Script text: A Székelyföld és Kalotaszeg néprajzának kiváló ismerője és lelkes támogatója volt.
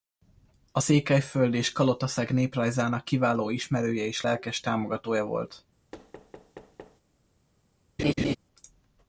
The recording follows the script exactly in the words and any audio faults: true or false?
false